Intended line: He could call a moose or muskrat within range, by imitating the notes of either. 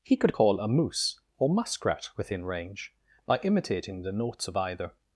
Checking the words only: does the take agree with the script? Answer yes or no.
yes